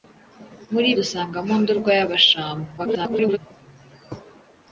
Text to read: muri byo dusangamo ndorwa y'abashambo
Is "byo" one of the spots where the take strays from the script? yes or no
yes